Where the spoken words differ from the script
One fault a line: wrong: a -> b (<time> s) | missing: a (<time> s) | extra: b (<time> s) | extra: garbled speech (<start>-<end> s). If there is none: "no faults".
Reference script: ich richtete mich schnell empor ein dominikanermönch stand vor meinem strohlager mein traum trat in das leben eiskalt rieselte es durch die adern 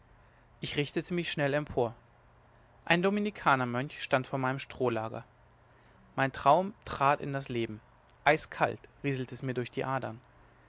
extra: mir (9.4 s)